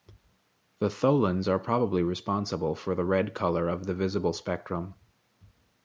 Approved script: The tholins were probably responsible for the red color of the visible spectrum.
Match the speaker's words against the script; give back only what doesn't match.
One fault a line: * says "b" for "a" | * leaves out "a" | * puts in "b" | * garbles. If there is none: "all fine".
* says "are" for "were"